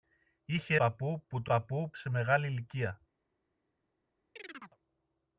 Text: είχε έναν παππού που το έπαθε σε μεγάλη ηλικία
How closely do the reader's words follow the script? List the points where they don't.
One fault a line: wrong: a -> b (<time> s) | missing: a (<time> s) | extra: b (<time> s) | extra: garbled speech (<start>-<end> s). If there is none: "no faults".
missing: έναν (0.8 s)
wrong: έπαθε -> παππού (1.4 s)